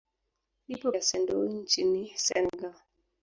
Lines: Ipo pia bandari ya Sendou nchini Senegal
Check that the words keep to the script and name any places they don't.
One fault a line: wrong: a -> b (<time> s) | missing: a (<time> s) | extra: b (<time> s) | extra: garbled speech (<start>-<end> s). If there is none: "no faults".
missing: pia bandari (0.9 s)